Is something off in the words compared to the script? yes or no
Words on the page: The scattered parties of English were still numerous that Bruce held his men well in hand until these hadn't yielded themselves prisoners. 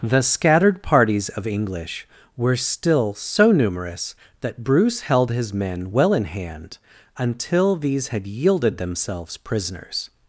yes